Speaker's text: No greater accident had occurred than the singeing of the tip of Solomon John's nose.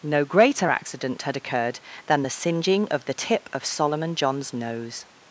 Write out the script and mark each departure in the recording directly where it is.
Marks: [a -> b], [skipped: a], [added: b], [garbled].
No greater accident had occurred than the singeing of the tip of Solomon John's nose.